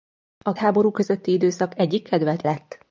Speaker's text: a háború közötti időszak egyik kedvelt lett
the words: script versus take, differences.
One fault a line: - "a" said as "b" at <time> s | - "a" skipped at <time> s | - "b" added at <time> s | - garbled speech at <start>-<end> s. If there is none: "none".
none